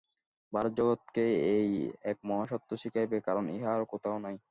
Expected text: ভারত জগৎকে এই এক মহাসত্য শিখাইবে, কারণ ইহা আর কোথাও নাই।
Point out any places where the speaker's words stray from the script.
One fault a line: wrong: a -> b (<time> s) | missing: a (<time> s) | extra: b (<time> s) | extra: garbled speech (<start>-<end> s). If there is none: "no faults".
no faults